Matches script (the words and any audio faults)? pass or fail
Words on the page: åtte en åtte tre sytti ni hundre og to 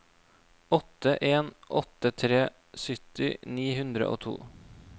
pass